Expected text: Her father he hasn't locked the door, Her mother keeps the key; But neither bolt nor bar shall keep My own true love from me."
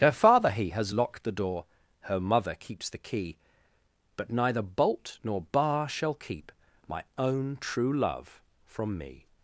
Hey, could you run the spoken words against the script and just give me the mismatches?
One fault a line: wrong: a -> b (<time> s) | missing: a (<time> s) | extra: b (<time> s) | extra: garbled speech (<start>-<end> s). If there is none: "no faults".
wrong: hasn't -> has (0.7 s)